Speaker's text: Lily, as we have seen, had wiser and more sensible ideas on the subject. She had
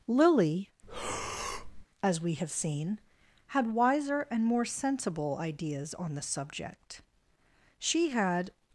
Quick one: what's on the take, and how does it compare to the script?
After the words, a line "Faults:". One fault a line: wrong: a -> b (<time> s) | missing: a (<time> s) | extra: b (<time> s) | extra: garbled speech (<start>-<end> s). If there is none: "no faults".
Lily, as we have seen, had wiser and more sensible ideas on the subject. She had
Faults:
no faults